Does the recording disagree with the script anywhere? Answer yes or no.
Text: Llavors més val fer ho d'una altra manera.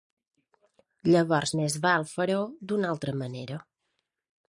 no